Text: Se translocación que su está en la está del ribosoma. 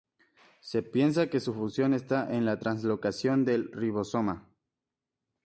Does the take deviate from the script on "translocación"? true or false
true